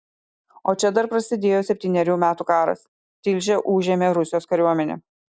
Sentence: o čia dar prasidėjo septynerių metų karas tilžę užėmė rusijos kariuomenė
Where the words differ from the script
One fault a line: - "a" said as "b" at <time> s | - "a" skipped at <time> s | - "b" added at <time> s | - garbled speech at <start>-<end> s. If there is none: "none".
none